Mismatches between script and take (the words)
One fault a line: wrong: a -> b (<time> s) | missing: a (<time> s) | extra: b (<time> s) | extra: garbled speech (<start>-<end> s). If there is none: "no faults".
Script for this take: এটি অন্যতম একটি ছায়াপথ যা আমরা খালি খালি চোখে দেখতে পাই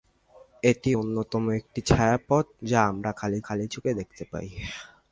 no faults